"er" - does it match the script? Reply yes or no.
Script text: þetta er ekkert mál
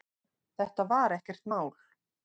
no